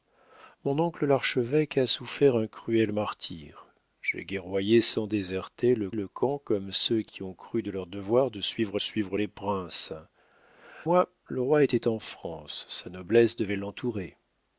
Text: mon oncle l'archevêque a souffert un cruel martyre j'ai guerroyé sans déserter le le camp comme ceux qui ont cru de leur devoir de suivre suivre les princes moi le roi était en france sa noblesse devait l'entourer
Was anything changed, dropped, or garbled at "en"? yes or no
no